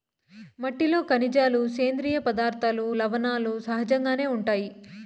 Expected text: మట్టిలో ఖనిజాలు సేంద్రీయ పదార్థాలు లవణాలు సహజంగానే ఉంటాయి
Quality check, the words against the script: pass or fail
pass